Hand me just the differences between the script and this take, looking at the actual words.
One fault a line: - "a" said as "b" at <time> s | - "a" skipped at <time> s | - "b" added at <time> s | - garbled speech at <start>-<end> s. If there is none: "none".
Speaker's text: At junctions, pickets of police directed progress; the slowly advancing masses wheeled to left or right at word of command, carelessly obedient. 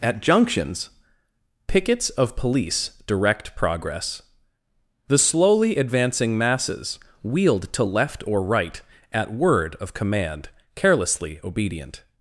- "directed" said as "direct" at 3.1 s